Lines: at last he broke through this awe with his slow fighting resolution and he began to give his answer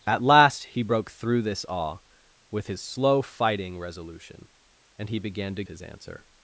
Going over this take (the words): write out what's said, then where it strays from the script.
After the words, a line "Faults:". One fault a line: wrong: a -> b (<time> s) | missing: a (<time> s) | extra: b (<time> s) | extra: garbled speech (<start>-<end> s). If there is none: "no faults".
at last he broke through this awe with his slow fighting resolution and he began to his answer
Faults:
missing: give (5.6 s)